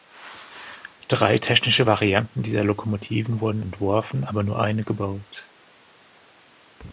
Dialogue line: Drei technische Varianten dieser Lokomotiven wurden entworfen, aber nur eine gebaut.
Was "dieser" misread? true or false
false